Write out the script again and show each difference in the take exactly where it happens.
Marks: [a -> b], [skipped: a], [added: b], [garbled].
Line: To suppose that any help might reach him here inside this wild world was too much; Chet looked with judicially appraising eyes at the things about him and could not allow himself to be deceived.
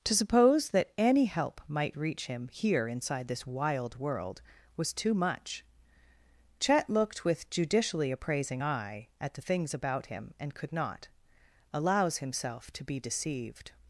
To suppose that any help might reach him here inside this wild world was too much; Chet looked with judicially appraising [eyes -> eye] at the things about him and could not [allow -> allows] himself to be deceived.